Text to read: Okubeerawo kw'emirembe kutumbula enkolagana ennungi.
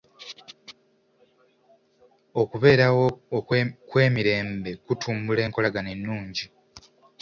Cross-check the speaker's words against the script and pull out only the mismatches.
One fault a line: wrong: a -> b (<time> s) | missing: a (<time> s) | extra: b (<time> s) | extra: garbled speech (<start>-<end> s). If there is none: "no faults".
no faults